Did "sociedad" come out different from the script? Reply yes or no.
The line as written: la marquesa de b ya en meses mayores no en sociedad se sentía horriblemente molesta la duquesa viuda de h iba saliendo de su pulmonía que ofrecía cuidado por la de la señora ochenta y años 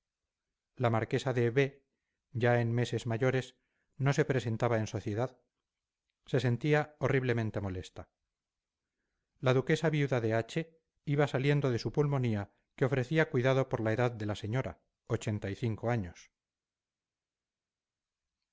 no